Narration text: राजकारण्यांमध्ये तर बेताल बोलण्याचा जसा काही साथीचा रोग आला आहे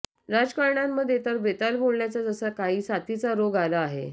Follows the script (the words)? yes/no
yes